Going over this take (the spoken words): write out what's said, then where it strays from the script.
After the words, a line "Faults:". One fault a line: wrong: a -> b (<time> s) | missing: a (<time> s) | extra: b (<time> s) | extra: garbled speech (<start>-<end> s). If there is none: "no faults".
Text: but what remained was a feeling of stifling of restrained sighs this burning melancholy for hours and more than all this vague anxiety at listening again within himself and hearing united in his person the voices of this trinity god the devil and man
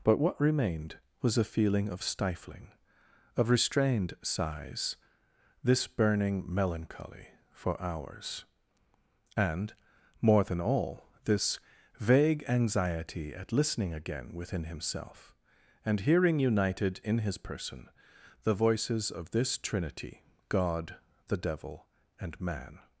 but what remained was a feeling of stifling of restrained sighs this burning melancholy for hours and more than all this vague anxiety at listening again within himself and hearing united in his person the voices of this trinity god the devil and man
Faults:
no faults